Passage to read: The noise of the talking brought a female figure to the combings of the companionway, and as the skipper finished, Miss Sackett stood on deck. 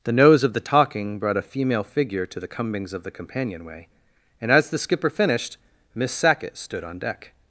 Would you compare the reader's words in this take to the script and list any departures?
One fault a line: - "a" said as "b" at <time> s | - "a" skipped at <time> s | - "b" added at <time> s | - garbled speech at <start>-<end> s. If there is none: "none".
- "noise" said as "nose" at 0.1 s